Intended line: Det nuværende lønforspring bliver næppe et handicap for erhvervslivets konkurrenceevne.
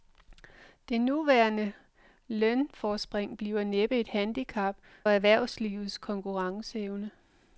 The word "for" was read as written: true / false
false